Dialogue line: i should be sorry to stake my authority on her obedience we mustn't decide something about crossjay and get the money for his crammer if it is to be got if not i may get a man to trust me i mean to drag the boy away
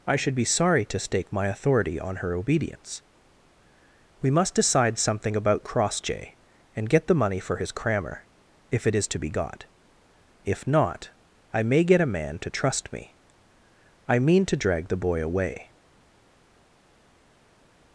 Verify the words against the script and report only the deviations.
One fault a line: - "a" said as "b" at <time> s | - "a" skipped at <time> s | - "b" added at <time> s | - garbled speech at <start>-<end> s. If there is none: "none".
- "mustn't" said as "must" at 4.3 s